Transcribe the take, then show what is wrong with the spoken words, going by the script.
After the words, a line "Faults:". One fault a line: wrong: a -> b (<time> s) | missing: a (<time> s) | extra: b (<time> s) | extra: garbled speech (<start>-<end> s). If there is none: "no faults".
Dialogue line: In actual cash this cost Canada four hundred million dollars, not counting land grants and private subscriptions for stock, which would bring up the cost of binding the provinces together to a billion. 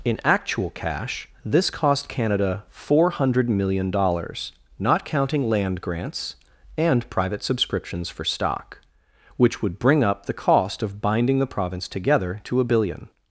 In actual cash this cost Canada four hundred million dollars, not counting land grants and private subscriptions for stock, which would bring up the cost of binding the province together to a billion.
Faults:
wrong: provinces -> province (11.4 s)